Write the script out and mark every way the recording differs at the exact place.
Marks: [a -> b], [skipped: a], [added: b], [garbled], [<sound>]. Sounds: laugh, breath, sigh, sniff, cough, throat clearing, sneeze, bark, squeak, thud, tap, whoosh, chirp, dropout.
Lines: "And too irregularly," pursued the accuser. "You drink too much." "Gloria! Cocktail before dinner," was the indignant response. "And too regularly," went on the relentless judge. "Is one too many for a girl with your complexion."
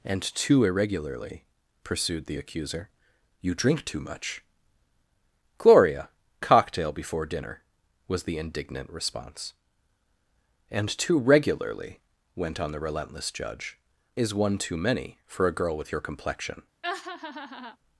"And too irregularly," pursued the accuser. "You drink too much." "Gloria! Cocktail before dinner," was the indignant response. "And too regularly," went on the relentless judge. "Is one too many for a girl with your complexion." [laugh]